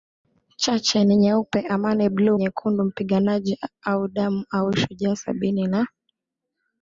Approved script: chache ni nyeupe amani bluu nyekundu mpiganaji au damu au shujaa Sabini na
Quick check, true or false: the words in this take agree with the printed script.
true